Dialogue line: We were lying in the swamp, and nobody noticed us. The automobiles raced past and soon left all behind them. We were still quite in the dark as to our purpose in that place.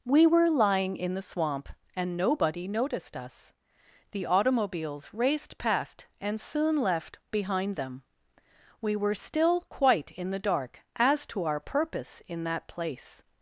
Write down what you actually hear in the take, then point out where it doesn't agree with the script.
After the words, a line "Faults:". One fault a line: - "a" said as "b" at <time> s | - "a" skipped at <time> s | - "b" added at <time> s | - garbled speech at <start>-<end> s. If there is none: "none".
We were lying in the swamp, and nobody noticed us. The automobiles raced past and soon left behind them. We were still quite in the dark as to our purpose in that place.
Faults:
- "all" skipped at 7.2 s